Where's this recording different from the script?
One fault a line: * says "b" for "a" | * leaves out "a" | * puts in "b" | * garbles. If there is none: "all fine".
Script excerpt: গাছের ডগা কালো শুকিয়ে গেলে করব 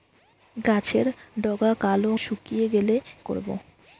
all fine